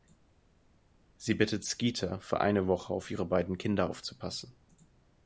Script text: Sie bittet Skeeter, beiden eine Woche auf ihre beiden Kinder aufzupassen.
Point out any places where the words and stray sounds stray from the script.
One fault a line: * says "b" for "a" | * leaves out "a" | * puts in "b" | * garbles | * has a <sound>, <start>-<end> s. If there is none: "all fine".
* says "für" for "beiden"